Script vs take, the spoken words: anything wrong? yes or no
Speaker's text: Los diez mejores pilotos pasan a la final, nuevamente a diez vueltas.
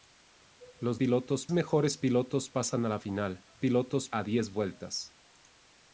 yes